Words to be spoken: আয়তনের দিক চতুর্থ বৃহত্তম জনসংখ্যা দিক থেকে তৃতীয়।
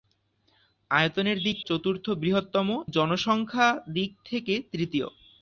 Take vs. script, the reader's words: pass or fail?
pass